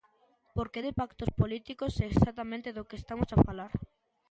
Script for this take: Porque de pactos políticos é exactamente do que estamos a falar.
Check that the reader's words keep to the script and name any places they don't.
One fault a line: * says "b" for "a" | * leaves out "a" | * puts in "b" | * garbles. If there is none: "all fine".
all fine